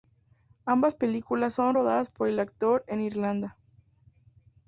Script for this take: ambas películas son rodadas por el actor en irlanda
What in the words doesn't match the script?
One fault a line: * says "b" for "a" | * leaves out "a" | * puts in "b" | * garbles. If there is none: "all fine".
all fine